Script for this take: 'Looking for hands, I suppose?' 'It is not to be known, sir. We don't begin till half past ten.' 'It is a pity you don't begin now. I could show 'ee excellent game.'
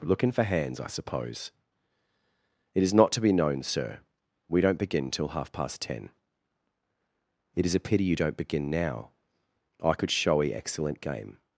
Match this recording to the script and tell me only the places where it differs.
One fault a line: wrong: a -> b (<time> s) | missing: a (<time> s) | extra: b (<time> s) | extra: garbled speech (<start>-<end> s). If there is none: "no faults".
no faults